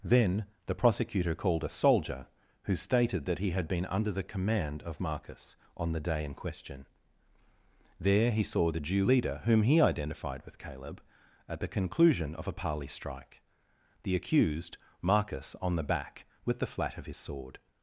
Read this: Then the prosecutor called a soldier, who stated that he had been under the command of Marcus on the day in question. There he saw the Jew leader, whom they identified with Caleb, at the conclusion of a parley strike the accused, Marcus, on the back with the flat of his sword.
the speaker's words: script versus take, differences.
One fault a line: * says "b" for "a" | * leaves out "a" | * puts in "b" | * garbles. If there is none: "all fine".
* says "he" for "they"